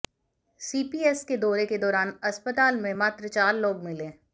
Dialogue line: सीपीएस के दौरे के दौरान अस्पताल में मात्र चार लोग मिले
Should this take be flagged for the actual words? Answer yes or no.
no